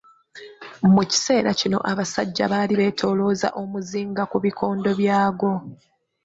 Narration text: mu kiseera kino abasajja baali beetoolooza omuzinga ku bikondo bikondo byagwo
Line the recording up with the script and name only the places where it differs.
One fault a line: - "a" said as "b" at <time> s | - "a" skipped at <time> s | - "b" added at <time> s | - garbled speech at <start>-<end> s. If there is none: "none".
- "bikondo" skipped at 4.9 s